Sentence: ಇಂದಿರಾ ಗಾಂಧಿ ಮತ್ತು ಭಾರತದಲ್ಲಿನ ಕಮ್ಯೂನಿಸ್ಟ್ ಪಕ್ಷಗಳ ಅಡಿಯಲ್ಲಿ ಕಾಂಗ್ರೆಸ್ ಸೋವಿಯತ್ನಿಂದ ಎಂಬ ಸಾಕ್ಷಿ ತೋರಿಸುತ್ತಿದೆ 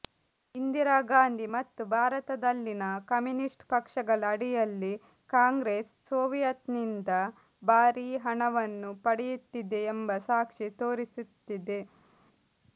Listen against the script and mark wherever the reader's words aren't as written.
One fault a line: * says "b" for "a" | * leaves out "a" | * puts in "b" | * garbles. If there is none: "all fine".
* puts in "ಭಾರೀ ಹಣವನ್ನು ಪಡೆಯುತ್ತಿದೆ"